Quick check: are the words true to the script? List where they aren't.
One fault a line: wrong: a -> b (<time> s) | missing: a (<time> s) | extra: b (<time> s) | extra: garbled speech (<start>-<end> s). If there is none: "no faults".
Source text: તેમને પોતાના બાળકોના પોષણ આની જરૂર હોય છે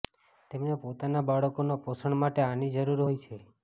extra: માટે (2.2 s)